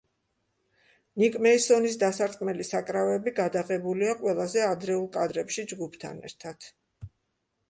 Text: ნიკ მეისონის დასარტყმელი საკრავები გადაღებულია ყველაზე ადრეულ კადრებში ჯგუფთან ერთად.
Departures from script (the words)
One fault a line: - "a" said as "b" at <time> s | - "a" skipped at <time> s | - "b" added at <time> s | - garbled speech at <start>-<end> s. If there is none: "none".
none